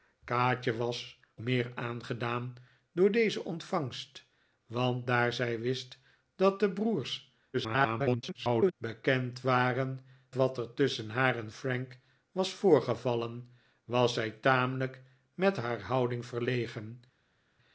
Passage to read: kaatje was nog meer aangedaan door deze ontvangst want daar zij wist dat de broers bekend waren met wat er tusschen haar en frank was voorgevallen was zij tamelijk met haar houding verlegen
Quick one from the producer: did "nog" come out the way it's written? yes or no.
no